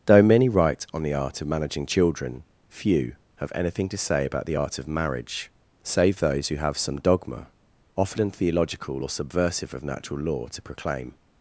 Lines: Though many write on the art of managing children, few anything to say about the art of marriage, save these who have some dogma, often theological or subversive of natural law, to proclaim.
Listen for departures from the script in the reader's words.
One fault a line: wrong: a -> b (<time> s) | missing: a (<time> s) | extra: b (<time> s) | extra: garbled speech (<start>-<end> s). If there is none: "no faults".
extra: have (3.4 s)
wrong: these -> those (6.2 s)